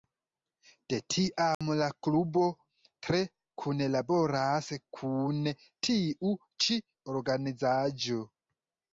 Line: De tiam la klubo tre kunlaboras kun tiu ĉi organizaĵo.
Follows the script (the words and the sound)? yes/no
no